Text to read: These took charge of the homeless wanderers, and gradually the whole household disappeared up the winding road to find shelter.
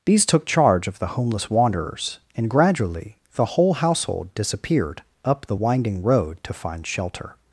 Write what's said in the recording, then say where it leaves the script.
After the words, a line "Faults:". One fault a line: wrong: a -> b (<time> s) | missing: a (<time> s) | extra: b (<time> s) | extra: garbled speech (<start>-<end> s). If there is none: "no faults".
These took charge of the homeless wanderers, and gradually the whole household disappeared up the winding road to find shelter.
Faults:
no faults